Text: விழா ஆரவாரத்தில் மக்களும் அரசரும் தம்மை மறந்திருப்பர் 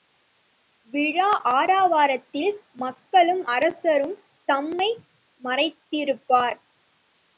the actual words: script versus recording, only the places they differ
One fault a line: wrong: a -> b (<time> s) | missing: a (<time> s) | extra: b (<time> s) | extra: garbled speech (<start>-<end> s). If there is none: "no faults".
no faults